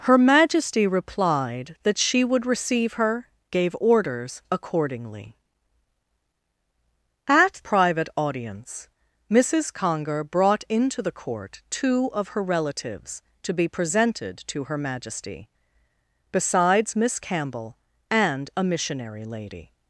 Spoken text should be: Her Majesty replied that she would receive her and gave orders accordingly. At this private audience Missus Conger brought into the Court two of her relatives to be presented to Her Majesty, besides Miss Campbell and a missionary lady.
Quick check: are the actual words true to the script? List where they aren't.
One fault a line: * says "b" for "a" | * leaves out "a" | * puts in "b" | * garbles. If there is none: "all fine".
* leaves out "and"
* leaves out "this"